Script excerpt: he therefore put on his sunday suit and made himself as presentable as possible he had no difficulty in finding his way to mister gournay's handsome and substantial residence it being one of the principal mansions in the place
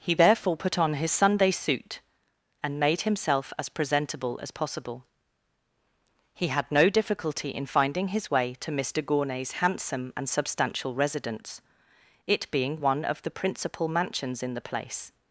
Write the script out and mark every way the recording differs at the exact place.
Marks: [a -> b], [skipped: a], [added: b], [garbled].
he therefore put on his sunday suit and made himself as presentable as possible he had no difficulty in finding his way to mister gournay's handsome and substantial residence it being one of the principal mansions in the place